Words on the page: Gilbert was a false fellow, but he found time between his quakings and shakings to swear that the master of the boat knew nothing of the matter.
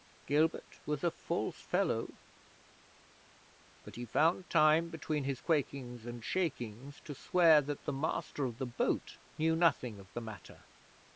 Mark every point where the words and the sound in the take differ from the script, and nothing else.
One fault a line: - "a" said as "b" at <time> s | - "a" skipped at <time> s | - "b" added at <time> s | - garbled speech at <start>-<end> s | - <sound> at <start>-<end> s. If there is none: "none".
none